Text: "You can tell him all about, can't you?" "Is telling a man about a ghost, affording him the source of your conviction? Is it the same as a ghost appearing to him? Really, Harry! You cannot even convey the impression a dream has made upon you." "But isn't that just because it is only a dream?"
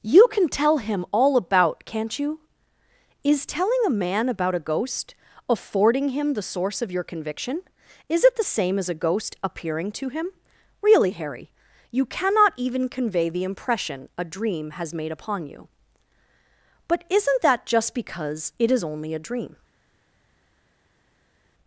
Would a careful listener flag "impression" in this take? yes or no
no